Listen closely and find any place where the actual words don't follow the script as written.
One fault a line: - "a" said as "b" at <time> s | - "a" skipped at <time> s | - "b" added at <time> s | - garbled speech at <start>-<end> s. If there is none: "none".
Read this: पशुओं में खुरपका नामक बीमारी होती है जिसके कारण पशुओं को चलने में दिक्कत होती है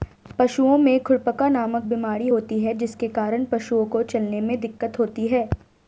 none